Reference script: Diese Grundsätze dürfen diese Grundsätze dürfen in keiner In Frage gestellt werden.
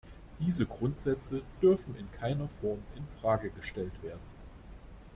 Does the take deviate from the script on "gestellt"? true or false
false